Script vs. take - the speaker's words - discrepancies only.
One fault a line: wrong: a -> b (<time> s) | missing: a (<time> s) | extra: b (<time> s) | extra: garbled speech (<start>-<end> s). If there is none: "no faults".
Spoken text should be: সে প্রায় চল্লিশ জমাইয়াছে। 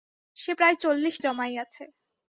no faults